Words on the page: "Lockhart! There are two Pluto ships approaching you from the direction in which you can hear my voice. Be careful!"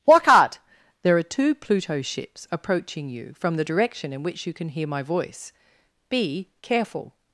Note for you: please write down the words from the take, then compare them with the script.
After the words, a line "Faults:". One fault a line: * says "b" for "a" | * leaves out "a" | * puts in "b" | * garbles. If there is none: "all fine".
"Lockhart! There are two Pluto ships approaching you from the direction in which you can hear my voice. Be careful!"
Faults:
all fine